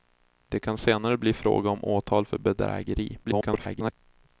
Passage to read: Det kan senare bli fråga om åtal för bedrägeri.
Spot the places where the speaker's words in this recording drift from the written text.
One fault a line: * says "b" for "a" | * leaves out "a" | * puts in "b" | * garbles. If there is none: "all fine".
* garbles